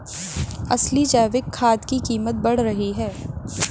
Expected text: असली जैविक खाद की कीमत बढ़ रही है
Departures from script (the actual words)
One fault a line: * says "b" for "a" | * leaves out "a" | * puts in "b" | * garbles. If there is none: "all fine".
all fine